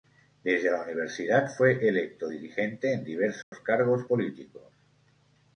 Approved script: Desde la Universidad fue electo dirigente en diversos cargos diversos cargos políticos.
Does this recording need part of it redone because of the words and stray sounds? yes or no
yes